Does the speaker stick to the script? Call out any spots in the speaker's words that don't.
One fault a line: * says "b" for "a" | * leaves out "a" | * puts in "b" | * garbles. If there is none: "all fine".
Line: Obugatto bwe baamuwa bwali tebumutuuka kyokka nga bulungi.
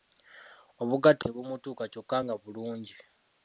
* leaves out "bwe baamuwa bwali"